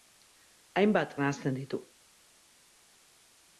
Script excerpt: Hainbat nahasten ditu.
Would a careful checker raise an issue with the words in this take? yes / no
no